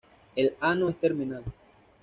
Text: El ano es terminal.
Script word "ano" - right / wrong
right